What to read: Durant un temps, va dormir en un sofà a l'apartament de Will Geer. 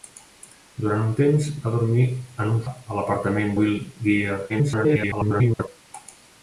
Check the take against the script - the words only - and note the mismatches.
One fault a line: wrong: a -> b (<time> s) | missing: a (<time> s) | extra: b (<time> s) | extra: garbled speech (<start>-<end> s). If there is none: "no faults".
missing: sofà (2.6 s)
missing: de (3.6 s)
extra: garbled speech (4.5-5.7 s)